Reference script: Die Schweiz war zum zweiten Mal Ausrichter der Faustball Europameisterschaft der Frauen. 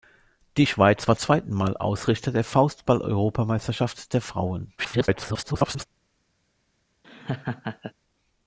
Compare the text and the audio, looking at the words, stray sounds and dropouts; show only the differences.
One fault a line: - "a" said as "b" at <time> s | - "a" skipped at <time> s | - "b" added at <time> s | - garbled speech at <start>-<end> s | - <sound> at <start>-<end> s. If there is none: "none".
- "zum" skipped at 1.2 s
- garbled speech at 4.8-5.9 s
- laugh at 7.0-7.9 s